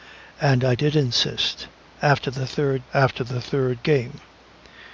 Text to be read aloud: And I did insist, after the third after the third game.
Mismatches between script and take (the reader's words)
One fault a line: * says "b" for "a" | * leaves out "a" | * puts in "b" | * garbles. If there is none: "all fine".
all fine